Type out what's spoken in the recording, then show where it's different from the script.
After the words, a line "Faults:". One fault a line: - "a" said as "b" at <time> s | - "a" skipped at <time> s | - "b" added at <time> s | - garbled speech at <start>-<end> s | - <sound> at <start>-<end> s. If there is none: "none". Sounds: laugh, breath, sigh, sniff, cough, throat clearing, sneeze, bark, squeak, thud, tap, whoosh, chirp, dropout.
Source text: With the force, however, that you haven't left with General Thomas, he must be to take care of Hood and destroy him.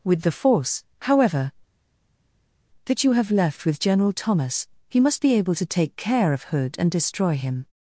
With the force, however, that you have left with General Thomas, he must be able to take care of Hood and destroy him.
Faults:
- "haven't" said as "have" at 3.1 s
- "able" added at 5.3 s